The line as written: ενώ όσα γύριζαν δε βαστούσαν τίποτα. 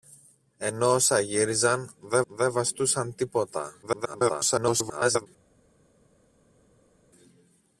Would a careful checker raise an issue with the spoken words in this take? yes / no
yes